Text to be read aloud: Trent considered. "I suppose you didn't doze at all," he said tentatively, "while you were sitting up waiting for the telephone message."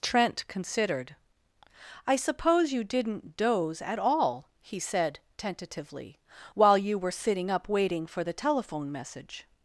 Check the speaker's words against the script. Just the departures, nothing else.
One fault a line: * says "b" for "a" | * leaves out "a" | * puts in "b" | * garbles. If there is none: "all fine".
all fine